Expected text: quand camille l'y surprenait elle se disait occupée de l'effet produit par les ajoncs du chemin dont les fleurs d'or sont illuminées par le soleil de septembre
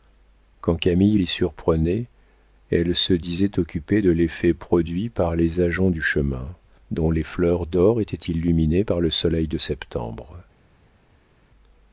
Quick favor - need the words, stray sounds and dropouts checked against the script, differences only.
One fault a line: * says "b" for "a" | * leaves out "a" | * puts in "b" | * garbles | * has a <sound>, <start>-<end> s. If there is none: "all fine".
* says "étaient" for "sont"